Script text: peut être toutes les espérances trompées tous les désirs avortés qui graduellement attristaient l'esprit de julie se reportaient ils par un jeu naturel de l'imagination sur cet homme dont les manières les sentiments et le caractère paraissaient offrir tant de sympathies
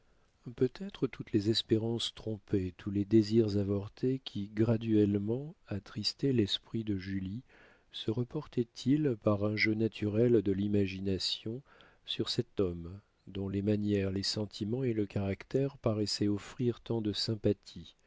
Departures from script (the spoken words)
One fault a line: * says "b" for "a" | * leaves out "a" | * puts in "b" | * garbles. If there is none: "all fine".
all fine